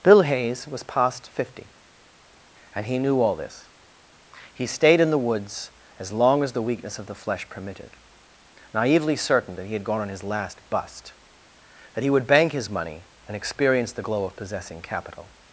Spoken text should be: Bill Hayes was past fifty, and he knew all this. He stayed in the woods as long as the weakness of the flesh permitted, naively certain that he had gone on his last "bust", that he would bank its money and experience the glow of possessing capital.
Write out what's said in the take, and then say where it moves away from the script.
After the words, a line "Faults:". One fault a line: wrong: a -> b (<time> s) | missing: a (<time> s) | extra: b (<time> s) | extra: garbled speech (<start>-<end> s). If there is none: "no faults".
Bill Hayes was past fifty, and he knew all this. He stayed in the woods as long as the weakness of the flesh permitted, naively certain that he had gone on his last "bust", that he would bank his money and experience the glow of possessing capital.
Faults:
wrong: its -> his (12.5 s)